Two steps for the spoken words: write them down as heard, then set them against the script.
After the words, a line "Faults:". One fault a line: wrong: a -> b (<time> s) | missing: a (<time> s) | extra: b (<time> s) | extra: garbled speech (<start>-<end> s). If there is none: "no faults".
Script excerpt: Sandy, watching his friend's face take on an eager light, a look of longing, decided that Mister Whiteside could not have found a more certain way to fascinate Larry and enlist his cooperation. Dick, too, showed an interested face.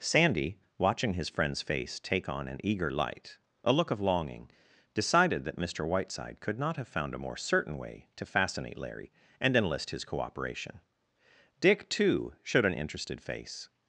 Sandy, watching his friend's face take on an eager light, a look of longing, decided that Mister Whiteside could not have found a more certain way to fascinate Larry and enlist his cooperation. Dick, too, showed an interested face.
Faults:
no faults